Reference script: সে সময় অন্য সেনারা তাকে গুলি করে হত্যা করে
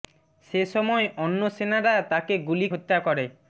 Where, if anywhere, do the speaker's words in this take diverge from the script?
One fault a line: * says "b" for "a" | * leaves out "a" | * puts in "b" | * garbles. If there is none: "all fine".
* leaves out "করে"